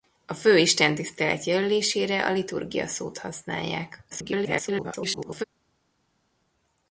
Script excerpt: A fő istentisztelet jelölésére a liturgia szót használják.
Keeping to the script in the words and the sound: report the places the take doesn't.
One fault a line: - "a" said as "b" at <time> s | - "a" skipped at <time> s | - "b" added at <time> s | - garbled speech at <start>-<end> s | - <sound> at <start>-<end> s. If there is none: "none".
- garbled speech at 4.1-5.4 s